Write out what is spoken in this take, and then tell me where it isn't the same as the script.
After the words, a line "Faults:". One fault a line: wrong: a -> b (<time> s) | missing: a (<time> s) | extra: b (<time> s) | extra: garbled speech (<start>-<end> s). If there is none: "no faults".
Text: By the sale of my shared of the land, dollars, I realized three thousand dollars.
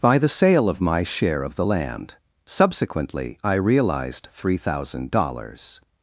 By the sale of my share of the land, subsequently, I realized three thousand dollars.
Faults:
wrong: shared -> share (1.0 s)
wrong: dollars -> subsequently (2.4 s)